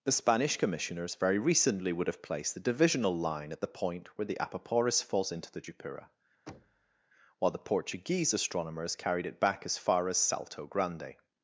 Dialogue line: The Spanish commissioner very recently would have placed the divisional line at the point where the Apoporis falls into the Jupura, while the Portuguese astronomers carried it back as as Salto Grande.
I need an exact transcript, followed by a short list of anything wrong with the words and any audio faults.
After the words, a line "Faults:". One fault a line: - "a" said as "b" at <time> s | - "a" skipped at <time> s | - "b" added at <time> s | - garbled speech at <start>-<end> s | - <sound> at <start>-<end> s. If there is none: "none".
The Spanish commissioners very recently would have placed the divisional line at the point where the Apoporis falls into the Jupura, while the Portuguese astronomers carried it back as far as Salto Grande.
Faults:
- "commissioner" said as "commissioners" at 0.6 s
- thud at 6.5-7.0 s
- "far" added at 9.8 s